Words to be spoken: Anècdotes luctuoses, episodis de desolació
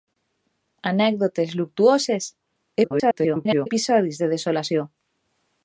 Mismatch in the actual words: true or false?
true